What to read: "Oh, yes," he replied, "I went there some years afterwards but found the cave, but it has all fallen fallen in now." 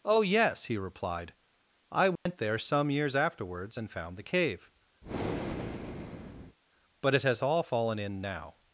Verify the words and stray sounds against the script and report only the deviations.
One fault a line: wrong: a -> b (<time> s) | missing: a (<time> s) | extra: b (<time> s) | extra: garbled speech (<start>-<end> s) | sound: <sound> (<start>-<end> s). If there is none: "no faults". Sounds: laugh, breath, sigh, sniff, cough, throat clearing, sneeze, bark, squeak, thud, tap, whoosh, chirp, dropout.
sound: dropout (2.2-2.3 s)
wrong: but -> and (3.8 s)
sound: breath (5.0-6.6 s)
missing: fallen (8.0 s)